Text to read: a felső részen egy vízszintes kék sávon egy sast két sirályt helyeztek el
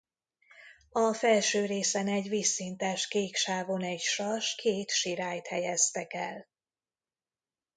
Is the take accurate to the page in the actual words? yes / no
yes